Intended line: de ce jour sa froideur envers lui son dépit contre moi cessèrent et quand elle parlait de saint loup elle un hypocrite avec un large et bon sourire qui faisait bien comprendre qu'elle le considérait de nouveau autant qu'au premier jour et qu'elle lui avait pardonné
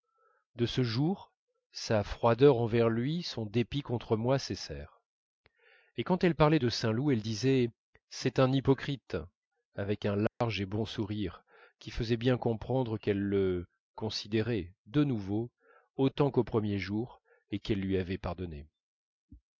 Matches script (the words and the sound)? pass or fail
fail